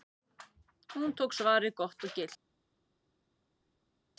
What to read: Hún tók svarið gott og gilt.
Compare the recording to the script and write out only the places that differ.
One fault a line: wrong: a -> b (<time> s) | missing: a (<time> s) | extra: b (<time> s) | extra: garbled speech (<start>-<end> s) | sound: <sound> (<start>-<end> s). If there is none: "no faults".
no faults